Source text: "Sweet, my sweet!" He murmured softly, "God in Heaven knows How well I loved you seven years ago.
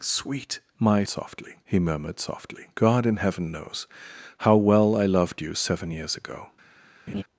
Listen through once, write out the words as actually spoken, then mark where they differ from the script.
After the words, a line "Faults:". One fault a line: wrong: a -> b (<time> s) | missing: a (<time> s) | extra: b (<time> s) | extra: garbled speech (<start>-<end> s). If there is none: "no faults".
"Sweet, my softly!" He murmured softly, "God in Heaven knows How well I loved you seven years ago.
Faults:
wrong: sweet -> softly (1.1 s)